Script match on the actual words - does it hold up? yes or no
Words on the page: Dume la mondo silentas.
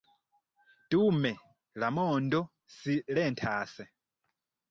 yes